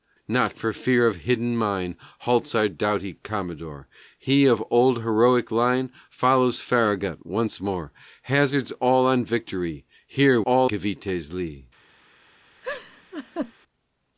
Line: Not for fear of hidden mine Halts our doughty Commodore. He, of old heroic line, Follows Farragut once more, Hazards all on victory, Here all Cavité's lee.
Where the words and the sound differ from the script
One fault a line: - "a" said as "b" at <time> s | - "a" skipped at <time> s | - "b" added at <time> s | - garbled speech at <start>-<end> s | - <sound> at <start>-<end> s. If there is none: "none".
- laugh at 12.6-13.5 s